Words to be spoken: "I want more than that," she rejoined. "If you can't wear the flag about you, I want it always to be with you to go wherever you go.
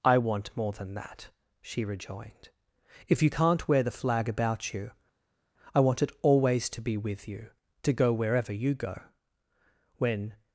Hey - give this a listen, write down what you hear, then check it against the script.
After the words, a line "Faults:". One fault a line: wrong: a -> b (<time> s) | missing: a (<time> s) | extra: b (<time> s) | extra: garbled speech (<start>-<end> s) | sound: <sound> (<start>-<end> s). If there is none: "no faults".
"I want more than that," she rejoined. "If you can't wear the flag about you, I want it always to be with you to go wherever you go. When
Faults:
extra: When (10.0 s)